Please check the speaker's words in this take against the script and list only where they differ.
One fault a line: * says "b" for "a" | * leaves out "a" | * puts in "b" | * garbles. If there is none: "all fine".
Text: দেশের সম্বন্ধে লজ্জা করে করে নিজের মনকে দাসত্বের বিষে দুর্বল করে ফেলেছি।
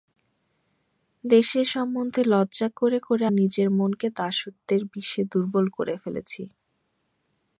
all fine